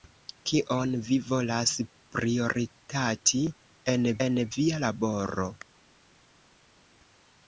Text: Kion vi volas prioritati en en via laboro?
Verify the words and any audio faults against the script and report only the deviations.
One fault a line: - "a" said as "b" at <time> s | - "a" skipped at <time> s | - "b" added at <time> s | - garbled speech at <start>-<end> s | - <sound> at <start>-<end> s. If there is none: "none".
none